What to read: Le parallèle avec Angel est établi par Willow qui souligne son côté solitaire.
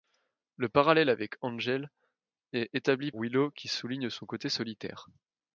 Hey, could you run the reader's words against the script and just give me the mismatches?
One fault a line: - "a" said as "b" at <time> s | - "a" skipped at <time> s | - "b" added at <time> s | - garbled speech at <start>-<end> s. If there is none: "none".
- "par" skipped at 3.1 s